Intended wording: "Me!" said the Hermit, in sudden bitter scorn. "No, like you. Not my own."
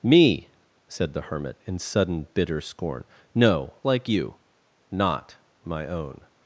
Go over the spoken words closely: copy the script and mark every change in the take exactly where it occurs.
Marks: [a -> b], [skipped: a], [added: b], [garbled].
"Me!" said the Hermit, in sudden bitter scorn. "No, like you. Not my own."